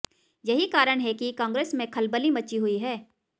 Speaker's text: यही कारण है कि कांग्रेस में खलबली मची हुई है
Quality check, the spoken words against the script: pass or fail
pass